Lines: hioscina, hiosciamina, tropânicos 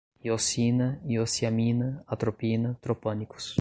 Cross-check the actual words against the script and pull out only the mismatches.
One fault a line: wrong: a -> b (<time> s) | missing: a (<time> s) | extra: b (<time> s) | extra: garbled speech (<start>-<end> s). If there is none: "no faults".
extra: atropina (2.1 s)